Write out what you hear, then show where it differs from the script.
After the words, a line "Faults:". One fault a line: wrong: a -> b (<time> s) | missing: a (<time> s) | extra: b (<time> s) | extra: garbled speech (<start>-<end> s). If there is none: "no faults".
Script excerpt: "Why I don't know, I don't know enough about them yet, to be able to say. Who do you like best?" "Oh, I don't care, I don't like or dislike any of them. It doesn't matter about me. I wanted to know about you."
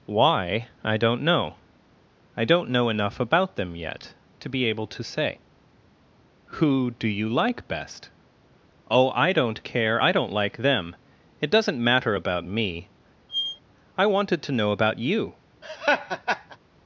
"Why I don't know, I don't know enough about them yet, to be able to say. Who do you like best?" "Oh, I don't care, I don't like them. It doesn't matter about me. I wanted to know about you."
Faults:
missing: or dislike any of (10.6 s)